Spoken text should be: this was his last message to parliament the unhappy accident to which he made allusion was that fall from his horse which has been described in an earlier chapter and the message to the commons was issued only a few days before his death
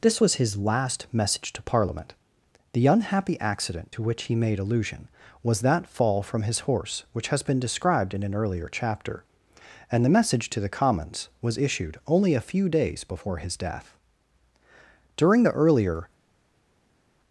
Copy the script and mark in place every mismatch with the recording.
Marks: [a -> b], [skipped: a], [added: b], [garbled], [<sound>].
this was his last message to parliament the unhappy accident to which he made allusion was that fall from his horse which has been described in an earlier chapter and the message to the commons was issued only a few days before his death [added: during the earlier]